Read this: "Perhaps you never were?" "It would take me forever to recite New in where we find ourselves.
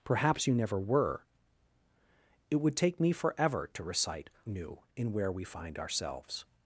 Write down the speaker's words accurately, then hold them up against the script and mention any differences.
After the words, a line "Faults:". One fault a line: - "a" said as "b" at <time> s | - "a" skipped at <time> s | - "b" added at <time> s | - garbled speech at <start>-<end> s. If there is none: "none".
"Perhaps you never were?" "It would take me forever to recite New in where we find ourselves.
Faults:
none